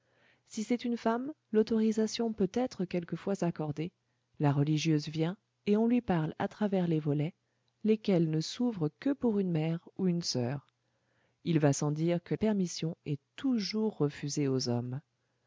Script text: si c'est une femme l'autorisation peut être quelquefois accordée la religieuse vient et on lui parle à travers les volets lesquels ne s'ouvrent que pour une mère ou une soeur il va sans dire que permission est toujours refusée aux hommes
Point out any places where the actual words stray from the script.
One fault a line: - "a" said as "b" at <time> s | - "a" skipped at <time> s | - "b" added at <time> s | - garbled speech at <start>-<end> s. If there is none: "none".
none